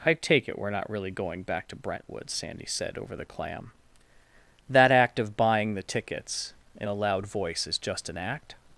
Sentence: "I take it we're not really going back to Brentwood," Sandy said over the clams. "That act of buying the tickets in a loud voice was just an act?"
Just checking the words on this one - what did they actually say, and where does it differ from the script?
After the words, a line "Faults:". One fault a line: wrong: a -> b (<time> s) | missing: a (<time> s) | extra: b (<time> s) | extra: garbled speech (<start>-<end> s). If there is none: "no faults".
"I take it we're not really going back to Brentwood," Sandy said over the clam. "That act of buying the tickets in a loud voice is just an act?"
Faults:
wrong: clams -> clam (3.2 s)
wrong: was -> is (7.7 s)